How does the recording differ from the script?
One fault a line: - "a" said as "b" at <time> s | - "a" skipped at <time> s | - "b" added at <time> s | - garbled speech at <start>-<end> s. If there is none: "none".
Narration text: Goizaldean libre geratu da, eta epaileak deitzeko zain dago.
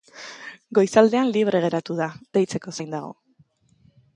- "eta epaileak" skipped at 2.1 s